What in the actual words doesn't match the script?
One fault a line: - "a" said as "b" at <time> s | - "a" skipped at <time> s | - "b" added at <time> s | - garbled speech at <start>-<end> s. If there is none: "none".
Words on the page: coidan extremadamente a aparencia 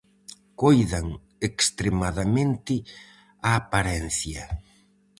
none